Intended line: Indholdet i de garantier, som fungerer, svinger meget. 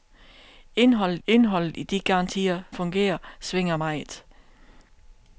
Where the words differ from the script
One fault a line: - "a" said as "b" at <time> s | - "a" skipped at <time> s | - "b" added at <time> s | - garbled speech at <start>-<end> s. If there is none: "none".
- "indholdet" added at 1.3 s
- "som" skipped at 2.6 s